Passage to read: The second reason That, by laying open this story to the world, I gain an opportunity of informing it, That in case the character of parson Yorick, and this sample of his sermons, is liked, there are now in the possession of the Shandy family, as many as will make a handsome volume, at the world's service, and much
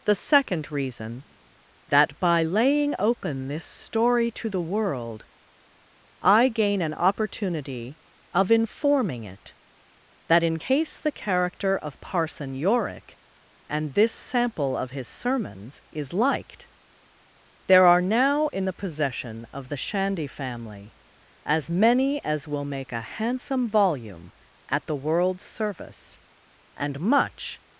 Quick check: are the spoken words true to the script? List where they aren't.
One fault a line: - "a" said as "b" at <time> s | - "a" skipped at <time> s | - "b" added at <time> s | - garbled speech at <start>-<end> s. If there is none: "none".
none